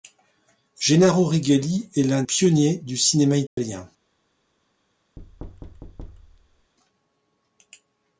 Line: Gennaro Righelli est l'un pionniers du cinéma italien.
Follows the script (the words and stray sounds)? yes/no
no